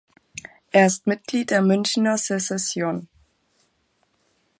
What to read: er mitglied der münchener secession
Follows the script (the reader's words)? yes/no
no